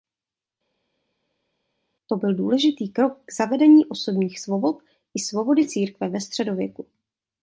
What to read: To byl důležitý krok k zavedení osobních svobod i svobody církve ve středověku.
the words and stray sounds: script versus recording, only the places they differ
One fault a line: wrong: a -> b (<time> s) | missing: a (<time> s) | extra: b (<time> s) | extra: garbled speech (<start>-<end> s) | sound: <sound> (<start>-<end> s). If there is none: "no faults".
no faults